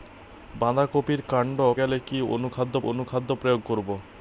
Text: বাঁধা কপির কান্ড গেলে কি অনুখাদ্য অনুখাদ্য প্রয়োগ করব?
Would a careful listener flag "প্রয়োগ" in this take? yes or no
no